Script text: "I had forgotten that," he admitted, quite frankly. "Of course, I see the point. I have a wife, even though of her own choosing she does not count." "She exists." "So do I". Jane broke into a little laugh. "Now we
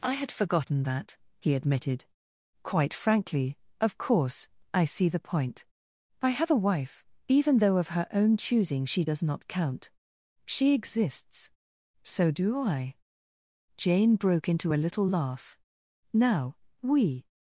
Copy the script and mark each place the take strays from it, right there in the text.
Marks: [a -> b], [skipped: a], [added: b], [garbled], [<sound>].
"I had forgotten that," he admitted, quite frankly. "Of course, I see the point. I have a wife, even though of her own choosing she does not count." "She exists." "So do I". Jane broke into a little laugh. "Now we